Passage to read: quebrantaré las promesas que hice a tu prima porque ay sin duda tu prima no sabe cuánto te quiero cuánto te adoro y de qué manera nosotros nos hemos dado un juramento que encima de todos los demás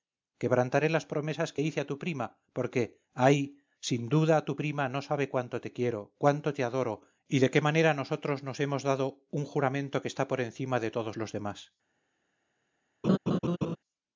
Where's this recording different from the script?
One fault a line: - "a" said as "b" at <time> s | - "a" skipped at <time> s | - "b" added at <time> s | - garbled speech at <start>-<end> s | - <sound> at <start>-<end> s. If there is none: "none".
- "está por" added at 10.1 s
- laugh at 13.0-13.8 s